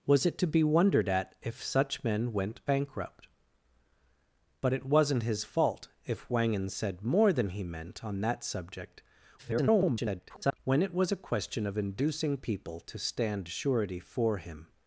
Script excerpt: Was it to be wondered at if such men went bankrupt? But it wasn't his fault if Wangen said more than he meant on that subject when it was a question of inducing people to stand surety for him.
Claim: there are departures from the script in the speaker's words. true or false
true